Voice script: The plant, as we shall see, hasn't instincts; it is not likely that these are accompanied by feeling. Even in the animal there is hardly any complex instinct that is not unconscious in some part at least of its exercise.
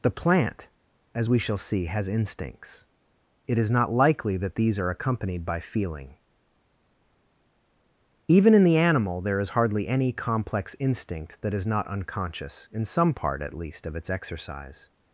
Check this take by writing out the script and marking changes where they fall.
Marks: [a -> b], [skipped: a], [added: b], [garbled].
The plant, as we shall see, [hasn't -> has] instincts; it is not likely that these are accompanied by feeling. Even in the animal there is hardly any complex instinct that is not unconscious in some part at least of its exercise.